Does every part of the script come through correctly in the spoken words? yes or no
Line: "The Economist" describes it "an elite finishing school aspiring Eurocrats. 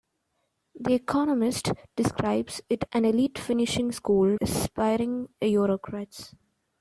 yes